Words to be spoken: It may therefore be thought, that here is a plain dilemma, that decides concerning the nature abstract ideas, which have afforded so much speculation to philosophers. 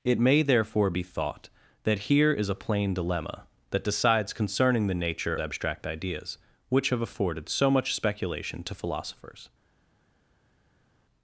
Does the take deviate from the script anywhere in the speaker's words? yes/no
no